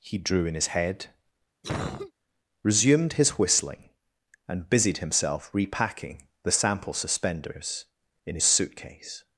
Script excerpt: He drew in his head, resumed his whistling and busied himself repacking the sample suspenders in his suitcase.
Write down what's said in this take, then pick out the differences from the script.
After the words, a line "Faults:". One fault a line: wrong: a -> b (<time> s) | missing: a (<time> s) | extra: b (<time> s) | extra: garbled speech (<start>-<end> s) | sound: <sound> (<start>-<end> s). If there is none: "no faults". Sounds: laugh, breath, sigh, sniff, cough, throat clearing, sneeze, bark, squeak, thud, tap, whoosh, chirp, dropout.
He drew in his head, resumed his whistling and busied himself repacking the sample suspenders in his suitcase.
Faults:
sound: cough (1.6-2.1 s)